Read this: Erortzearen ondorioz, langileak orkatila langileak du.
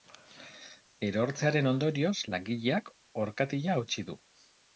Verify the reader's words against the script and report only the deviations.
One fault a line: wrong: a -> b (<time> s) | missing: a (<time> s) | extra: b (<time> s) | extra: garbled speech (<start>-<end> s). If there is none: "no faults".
wrong: langileak -> hautsi (3.8 s)